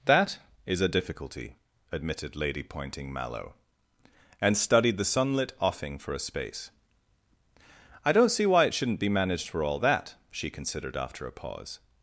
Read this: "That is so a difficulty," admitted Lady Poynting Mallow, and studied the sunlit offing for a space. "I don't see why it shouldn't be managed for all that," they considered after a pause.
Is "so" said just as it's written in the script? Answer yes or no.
no